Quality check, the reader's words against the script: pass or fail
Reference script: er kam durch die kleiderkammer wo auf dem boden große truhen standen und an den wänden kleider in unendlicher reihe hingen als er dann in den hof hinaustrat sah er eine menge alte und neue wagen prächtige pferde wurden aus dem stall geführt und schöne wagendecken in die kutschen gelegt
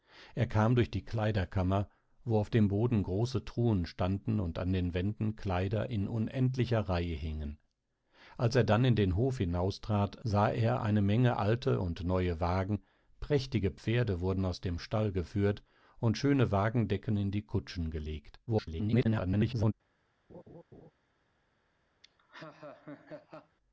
fail